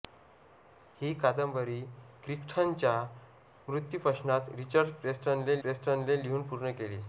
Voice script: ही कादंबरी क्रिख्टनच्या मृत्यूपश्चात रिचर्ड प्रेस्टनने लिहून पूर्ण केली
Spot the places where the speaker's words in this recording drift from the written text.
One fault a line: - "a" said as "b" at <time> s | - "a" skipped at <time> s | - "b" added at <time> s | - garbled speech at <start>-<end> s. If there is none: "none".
- "प्रेस्टनने" added at 5.6 s